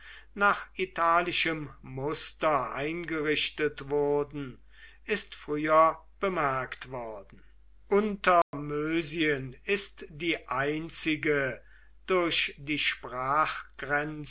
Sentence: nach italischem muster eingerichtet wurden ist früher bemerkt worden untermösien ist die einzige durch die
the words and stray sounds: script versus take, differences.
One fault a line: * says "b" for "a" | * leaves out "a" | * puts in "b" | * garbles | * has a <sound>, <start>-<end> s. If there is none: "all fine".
* has a dropout, 8.4-8.5 s